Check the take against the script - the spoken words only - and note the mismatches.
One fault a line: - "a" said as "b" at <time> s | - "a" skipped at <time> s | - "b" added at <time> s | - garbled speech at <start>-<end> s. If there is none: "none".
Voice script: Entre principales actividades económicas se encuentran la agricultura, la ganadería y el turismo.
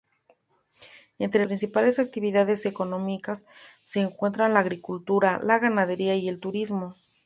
none